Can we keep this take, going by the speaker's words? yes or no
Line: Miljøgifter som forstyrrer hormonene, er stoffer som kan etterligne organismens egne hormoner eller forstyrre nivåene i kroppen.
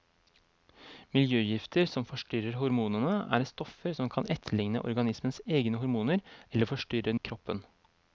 no